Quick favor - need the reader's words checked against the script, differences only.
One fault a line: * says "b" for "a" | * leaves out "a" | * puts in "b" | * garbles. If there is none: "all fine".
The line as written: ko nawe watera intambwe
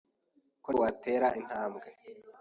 * leaves out "nawe"